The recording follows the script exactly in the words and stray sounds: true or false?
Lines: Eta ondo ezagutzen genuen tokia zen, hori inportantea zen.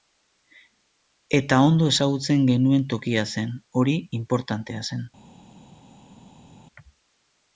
true